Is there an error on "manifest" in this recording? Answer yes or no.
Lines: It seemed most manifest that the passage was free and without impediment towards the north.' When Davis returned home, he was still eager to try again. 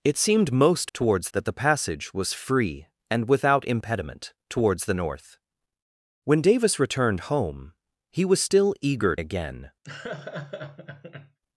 yes